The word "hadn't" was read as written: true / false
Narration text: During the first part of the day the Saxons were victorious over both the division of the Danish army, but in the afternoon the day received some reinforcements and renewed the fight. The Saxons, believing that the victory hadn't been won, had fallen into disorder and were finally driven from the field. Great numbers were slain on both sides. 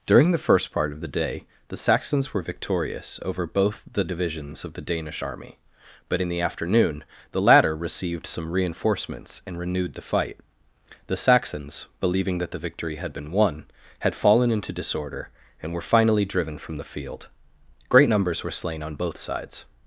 false